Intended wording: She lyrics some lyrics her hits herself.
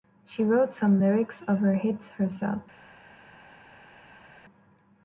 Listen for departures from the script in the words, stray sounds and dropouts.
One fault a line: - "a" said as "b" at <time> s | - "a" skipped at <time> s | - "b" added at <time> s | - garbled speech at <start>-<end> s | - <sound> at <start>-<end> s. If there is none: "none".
- "lyrics" said as "wrote" at 0.4 s
- "of" added at 1.5 s